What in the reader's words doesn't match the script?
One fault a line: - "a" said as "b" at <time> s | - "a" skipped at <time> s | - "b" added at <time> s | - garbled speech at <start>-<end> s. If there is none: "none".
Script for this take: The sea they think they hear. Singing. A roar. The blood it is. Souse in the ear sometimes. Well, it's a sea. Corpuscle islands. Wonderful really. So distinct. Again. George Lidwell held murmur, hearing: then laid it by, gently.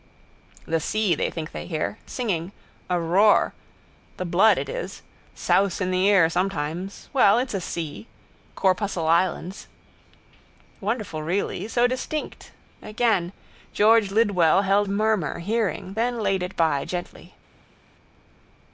none